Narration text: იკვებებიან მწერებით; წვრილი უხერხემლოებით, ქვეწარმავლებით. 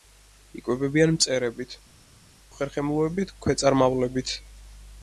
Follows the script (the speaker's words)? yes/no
no